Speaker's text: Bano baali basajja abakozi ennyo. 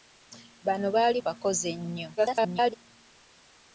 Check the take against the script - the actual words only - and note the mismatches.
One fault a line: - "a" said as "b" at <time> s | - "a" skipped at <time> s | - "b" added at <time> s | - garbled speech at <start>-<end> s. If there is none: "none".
- "basajja" skipped at 1.2 s
- garbled speech at 2.2-2.7 s